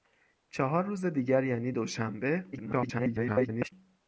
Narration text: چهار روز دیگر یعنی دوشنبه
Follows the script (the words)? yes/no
no